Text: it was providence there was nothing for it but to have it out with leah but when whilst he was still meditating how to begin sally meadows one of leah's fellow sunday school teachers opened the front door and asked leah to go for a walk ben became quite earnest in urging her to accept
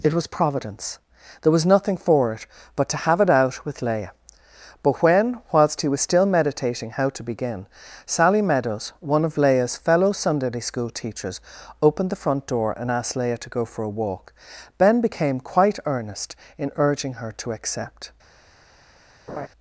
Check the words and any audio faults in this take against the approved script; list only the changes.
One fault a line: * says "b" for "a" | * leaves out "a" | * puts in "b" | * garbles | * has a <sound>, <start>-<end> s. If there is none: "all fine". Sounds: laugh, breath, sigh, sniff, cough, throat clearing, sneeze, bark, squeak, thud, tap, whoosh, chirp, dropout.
* has a laugh, 19.3-19.5 s